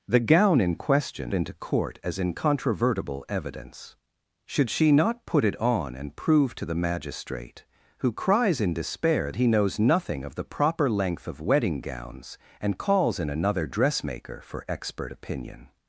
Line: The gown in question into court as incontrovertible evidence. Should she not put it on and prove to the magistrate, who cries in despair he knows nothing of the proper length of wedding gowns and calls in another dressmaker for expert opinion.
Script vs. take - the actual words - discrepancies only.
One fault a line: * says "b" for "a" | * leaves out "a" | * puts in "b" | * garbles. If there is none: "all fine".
all fine